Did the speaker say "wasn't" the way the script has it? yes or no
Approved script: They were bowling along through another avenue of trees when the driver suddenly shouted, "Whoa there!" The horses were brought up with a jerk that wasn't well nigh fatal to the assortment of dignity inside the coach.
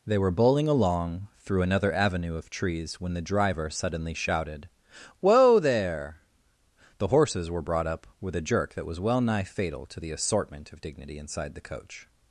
no